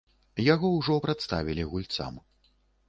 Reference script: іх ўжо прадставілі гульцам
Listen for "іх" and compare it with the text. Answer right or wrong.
wrong